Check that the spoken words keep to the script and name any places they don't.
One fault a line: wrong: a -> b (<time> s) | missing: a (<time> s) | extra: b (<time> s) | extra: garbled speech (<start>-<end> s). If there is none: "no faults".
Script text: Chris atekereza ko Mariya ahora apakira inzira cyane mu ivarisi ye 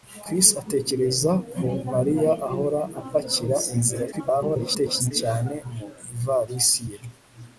extra: garbled speech (4.1-5.1 s)